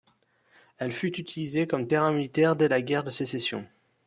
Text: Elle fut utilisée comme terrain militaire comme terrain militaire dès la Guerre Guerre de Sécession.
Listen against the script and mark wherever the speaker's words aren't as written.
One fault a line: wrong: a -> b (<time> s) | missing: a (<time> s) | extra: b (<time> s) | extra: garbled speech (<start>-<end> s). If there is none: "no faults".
missing: comme terrain militaire (2.5 s)
missing: Guerre (3.0 s)